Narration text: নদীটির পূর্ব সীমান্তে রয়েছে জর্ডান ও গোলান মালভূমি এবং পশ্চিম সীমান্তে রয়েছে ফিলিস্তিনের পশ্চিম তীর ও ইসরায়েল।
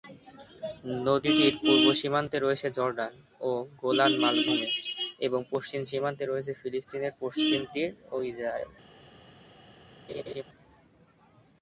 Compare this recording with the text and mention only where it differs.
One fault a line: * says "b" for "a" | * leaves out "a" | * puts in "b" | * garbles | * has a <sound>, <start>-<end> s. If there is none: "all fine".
* has a laugh, 10.1-10.4 s